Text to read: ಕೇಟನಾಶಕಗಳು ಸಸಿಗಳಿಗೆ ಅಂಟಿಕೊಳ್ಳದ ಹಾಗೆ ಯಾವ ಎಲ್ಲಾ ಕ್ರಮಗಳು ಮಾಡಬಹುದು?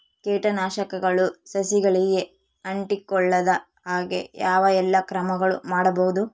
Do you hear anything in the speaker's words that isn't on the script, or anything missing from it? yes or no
no